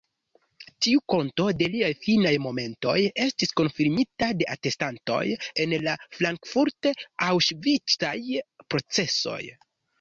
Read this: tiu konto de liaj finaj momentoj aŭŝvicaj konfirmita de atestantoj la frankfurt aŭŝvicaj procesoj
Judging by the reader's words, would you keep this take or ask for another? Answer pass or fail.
fail